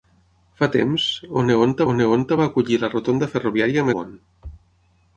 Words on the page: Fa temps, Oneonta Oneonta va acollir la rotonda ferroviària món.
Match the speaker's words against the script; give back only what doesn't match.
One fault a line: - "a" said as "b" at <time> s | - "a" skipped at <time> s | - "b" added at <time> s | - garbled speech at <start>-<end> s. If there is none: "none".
none